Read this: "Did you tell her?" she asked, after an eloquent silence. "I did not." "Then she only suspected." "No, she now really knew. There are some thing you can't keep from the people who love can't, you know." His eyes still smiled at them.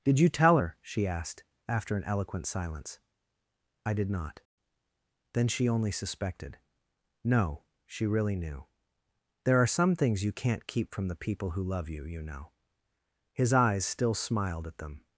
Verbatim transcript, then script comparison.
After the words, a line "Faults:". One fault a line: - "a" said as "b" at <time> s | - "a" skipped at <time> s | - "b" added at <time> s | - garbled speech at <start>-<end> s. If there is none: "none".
"Did you tell her?" she asked, after an eloquent silence. "I did not." "Then she only suspected." "No, she really knew. There are some things you can't keep from the people who love you, you know." His eyes still smiled at them.
Faults:
- "now" skipped at 8.0 s
- "thing" said as "things" at 9.9 s
- "can't" said as "you" at 11.9 s